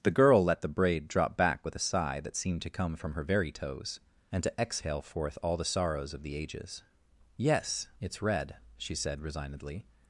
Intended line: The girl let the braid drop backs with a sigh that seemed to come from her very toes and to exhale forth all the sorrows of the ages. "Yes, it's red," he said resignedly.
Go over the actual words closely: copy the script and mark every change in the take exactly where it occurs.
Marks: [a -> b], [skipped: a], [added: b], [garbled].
The girl let the braid drop [backs -> back] with a sigh that seemed to come from her very toes and to exhale forth all the sorrows of the ages. "Yes, it's red," [he -> she] said resignedly.